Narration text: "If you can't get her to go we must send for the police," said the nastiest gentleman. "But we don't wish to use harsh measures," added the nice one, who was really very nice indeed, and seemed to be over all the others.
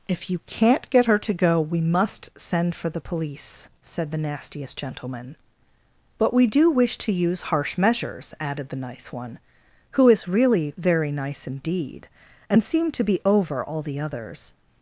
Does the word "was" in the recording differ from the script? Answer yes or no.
yes